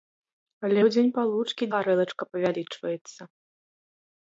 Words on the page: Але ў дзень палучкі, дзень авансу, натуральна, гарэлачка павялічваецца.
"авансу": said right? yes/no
no